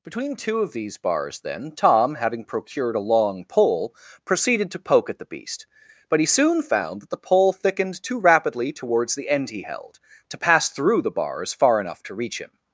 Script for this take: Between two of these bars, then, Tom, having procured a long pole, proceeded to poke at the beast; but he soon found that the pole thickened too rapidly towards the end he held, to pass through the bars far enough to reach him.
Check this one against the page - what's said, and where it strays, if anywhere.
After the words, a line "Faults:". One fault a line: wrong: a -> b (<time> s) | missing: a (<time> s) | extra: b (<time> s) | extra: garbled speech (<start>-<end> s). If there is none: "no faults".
Between two of these bars, then, Tom, having procured a long pole, proceeded to poke at the beast; but he soon found that the pole thickened too rapidly towards the end he held, to pass through the bars far enough to reach him.
Faults:
no faults